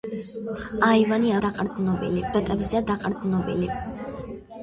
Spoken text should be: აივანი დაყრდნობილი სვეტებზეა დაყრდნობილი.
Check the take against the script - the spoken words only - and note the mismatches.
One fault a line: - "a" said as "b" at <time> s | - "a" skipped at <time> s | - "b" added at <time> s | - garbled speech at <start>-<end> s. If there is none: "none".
none